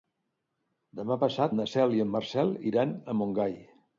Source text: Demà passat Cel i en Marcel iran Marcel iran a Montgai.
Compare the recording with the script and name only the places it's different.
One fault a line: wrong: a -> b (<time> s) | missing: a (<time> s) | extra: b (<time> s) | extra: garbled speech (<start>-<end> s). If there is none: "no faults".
extra: na (1.5 s)
missing: Marcel iran (3.0 s)